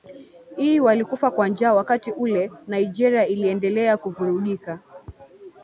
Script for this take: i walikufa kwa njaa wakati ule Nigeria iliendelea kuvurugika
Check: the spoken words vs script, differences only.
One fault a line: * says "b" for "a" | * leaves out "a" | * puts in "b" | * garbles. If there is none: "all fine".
all fine